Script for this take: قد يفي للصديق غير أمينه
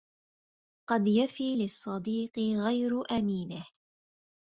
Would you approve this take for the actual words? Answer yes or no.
yes